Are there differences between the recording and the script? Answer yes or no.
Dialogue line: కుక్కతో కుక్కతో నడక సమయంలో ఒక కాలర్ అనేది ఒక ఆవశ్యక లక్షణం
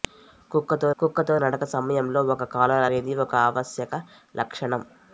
no